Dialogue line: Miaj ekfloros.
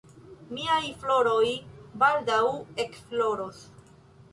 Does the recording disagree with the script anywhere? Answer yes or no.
yes